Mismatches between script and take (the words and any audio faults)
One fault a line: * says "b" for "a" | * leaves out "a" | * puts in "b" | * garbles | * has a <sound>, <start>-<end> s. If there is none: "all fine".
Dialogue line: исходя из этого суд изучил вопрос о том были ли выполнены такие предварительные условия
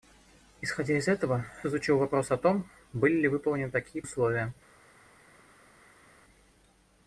* leaves out "суд"
* leaves out "предварительные"